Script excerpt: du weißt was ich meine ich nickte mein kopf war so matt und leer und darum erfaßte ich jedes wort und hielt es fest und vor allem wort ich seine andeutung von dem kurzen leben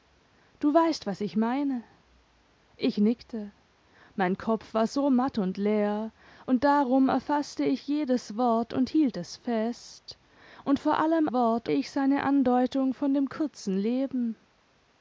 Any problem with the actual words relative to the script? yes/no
no